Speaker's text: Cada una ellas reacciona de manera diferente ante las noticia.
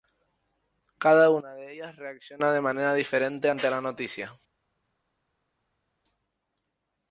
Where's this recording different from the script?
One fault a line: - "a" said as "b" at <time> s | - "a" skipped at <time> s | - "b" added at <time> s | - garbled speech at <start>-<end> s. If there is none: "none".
- "de" added at 1.5 s
- "las" said as "la" at 3.7 s